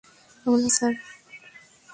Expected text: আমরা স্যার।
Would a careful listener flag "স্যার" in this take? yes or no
no